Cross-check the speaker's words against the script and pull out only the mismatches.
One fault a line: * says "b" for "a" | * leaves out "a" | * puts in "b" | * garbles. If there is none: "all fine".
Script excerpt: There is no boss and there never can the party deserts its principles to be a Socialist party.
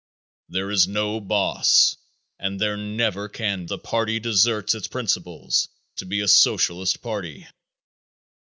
all fine